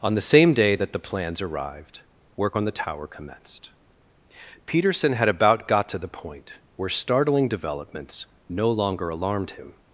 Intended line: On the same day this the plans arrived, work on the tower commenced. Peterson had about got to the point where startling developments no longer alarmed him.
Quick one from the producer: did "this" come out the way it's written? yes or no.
no